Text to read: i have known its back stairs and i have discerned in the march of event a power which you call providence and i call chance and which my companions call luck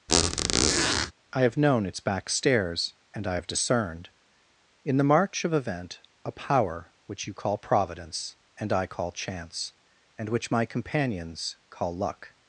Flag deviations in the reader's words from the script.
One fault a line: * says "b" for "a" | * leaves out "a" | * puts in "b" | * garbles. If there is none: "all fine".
all fine